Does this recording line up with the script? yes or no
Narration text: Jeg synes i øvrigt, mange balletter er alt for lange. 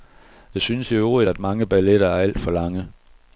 no